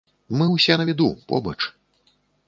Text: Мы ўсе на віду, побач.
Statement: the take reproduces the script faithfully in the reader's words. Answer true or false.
true